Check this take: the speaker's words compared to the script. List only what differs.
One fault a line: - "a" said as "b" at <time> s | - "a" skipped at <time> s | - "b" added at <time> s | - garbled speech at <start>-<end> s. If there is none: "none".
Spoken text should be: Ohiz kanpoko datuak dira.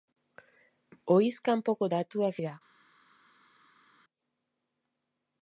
none